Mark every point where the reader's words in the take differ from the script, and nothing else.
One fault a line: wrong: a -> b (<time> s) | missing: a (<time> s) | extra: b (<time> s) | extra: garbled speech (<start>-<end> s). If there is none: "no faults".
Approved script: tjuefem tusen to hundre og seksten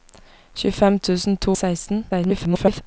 missing: hundre (1.5 s)
extra: garbled speech (2.1-2.8 s)